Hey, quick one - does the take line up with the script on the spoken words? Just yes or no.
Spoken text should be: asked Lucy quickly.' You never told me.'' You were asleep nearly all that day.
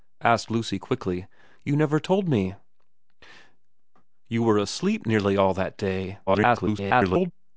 no